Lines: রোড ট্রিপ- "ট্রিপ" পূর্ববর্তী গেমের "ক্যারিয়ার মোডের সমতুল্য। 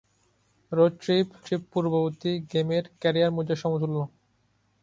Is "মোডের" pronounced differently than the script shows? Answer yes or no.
no